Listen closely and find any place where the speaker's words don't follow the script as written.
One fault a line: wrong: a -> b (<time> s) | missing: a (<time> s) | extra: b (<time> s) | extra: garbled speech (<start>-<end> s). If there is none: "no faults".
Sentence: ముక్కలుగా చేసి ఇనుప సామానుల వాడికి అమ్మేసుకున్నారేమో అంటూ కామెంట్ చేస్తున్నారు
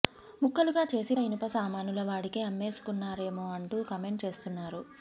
no faults